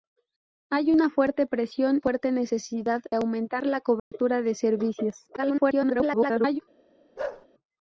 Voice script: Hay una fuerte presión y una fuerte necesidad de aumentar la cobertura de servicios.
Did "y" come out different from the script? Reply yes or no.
yes